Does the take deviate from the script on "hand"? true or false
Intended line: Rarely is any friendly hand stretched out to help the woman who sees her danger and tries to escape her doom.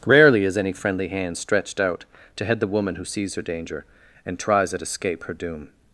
false